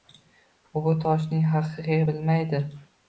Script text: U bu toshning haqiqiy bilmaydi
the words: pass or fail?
pass